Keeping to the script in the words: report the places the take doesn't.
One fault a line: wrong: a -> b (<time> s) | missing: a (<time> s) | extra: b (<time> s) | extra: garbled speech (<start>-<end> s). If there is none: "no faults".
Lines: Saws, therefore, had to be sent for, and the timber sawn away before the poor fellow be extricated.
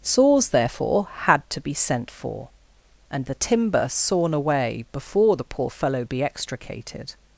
no faults